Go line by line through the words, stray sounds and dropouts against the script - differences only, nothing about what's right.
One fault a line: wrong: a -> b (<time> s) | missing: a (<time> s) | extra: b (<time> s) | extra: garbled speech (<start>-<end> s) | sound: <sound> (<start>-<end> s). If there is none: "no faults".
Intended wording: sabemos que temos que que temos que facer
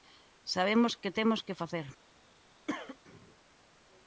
missing: que temos que (1.6 s)
sound: cough (2.7-3.0 s)